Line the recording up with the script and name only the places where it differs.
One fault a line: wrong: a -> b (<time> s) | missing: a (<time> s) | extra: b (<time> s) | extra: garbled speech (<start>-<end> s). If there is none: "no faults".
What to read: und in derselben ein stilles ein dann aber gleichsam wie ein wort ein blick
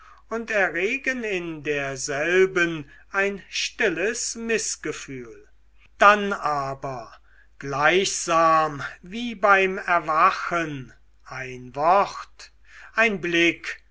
extra: erregen (0.5 s)
wrong: ein -> mißgefühl (4.3 s)
extra: beim erwachen (9.3 s)